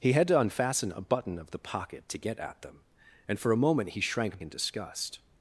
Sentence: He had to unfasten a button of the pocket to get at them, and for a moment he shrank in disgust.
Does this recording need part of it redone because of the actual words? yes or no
no